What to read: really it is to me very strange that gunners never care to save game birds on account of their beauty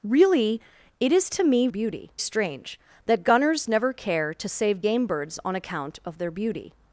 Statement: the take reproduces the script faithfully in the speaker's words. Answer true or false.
false